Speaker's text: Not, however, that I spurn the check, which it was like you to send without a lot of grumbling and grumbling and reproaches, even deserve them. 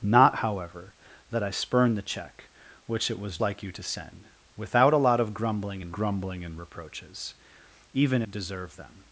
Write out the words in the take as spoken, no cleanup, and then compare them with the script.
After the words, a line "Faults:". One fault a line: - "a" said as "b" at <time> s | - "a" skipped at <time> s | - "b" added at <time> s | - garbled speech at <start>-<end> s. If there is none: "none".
Not, however, that I spurn the check, which it was like you to send without a lot of grumbling and grumbling and reproaches, even deserve them.
Faults:
none